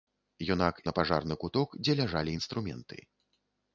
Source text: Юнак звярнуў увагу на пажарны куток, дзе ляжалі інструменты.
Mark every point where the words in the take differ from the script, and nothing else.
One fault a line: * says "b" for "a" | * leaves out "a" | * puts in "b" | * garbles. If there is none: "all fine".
* leaves out "звярнуў увагу"